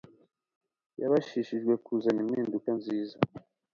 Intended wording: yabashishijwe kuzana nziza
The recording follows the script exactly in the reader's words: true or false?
false